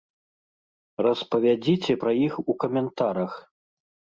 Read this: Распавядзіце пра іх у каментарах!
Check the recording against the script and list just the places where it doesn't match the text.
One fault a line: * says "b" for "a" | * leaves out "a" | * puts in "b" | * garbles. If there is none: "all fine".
all fine